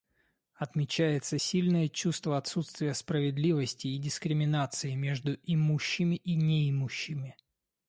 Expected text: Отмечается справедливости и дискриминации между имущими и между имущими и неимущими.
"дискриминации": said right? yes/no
yes